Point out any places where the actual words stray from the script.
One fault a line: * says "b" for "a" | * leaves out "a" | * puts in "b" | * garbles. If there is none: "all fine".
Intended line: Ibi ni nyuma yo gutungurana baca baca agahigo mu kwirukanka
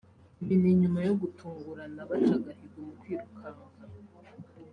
* leaves out "baca"